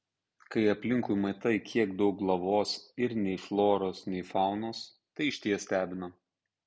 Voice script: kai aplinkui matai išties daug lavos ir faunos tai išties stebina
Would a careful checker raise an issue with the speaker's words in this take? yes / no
yes